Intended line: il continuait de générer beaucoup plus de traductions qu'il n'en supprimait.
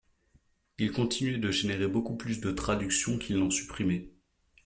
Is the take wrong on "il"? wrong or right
right